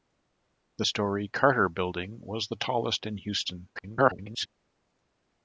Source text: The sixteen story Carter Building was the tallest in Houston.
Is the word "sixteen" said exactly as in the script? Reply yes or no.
no